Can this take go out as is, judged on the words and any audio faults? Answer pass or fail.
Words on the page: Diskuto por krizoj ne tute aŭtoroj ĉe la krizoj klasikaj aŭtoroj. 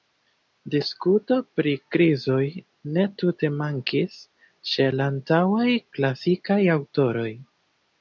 fail